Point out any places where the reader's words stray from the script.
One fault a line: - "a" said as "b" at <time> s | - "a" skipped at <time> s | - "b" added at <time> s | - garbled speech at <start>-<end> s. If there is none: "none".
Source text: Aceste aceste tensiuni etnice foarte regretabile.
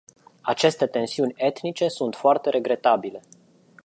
- "aceste" skipped at 0.9 s
- "sunt" added at 1.9 s